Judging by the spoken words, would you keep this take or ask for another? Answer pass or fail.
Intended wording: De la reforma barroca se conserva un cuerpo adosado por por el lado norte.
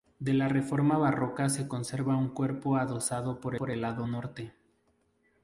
pass